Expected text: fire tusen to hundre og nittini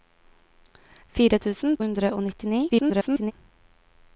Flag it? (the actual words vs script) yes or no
yes